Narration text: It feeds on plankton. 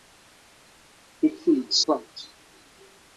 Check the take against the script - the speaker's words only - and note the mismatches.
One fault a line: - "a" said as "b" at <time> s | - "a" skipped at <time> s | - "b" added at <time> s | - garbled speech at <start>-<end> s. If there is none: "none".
- "on" skipped at 1.9 s